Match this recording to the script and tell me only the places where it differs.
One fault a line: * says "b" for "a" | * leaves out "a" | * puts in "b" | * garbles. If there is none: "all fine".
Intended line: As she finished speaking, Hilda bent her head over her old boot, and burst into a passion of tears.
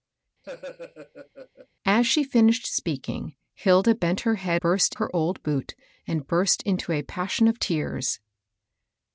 * says "burst" for "over"